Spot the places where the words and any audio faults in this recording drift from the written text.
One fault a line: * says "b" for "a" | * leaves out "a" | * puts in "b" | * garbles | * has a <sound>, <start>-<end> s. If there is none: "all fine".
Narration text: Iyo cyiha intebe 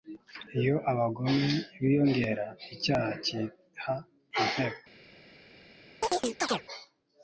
* puts in "abagome biyongera icyaha"
* has a chirp, 6.0-6.6 s